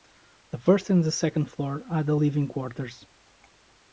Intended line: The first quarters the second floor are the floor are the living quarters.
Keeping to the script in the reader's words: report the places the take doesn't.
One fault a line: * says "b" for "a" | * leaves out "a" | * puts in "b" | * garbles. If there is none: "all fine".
* says "and" for "quarters"
* leaves out "floor are the"